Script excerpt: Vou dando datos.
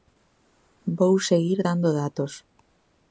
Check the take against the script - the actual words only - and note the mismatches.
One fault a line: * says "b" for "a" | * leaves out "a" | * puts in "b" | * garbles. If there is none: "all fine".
* puts in "seguir"